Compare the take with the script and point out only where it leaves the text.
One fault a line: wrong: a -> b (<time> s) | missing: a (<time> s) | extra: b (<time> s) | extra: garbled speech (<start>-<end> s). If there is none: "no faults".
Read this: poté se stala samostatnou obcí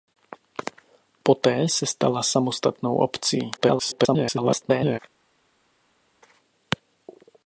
extra: garbled speech (3.6-5.0 s)